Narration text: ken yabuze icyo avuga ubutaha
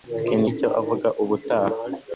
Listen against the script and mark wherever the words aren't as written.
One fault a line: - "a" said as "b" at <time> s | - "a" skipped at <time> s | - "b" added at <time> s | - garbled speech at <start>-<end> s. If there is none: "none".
- "yabuze" skipped at 0.4 s